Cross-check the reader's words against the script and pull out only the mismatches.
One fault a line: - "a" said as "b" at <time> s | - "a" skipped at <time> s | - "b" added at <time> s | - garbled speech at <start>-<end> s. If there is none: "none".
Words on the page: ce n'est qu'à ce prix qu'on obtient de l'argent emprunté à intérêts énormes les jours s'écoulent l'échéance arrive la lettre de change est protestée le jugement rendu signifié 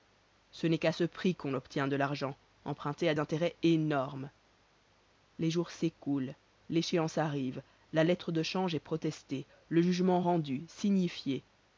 none